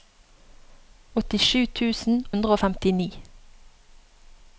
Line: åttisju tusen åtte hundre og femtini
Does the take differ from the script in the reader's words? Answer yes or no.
yes